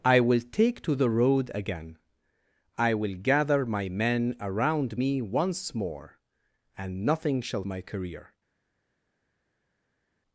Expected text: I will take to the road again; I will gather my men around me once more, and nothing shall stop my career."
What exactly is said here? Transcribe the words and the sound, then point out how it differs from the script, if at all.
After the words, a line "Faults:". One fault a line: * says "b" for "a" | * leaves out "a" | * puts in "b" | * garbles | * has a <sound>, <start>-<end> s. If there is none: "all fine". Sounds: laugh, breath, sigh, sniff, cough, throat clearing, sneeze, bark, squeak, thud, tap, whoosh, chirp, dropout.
I will take to the road again; I will gather my men around me once more, and nothing shall my career."
Faults:
* leaves out "stop"